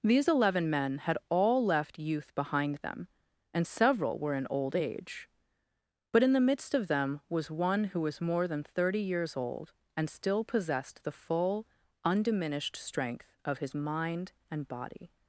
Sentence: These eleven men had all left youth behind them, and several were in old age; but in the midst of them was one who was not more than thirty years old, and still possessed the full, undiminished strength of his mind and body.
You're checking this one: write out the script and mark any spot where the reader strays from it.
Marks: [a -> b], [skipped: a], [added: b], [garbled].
These eleven men had all left youth behind them, and several were in old age; but in the midst of them was one who was [skipped: not] more than thirty years old, and still possessed the full, undiminished strength of his mind and body.